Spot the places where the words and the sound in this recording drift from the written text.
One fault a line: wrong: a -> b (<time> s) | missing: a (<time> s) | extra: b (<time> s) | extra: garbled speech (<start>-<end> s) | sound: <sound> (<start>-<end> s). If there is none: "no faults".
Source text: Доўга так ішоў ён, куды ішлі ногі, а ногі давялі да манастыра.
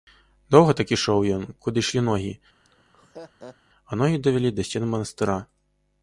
sound: laugh (2.6-3.6 s)
extra: сцен (4.7 s)